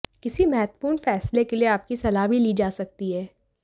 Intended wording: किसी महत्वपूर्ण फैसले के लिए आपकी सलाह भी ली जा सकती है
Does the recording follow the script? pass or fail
pass